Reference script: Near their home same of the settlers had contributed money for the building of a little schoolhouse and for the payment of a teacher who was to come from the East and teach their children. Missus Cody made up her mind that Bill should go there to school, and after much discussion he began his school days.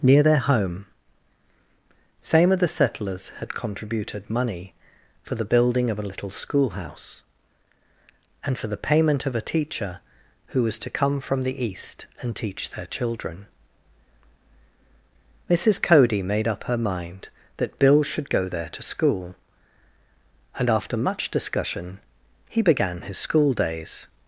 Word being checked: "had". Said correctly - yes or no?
yes